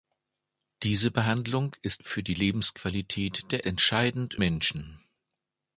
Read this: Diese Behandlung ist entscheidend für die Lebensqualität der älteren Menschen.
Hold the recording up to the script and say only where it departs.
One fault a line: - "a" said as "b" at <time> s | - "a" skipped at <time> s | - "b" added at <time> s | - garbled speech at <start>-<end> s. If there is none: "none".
- "entscheidend" skipped at 2.0 s
- "älteren" said as "entscheidend" at 3.6 s